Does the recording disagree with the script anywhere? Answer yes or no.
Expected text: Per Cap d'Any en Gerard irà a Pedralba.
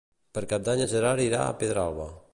no